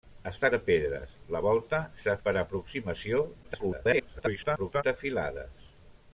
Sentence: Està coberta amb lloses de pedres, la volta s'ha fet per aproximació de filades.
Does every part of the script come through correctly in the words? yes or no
no